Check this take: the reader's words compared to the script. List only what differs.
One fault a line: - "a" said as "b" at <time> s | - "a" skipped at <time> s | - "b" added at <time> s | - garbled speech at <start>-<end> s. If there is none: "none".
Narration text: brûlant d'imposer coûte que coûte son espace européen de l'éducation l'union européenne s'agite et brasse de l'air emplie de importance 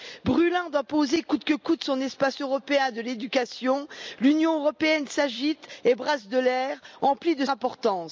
none